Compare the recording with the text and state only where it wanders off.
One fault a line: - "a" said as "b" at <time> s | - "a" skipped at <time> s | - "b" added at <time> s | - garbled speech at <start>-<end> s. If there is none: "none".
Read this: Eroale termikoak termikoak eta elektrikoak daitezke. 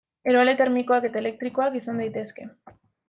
- "termikoak" skipped at 1.1 s
- "izan" added at 1.8 s